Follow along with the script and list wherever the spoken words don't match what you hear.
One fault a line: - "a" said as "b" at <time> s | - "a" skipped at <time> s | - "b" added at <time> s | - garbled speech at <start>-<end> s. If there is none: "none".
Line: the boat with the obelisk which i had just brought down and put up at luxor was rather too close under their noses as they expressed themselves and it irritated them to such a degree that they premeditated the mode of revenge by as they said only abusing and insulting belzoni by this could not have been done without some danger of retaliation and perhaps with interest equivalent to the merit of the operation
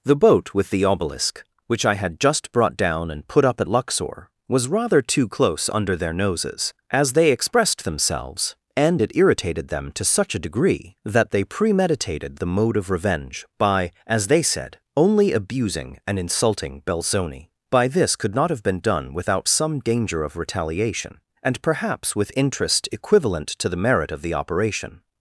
none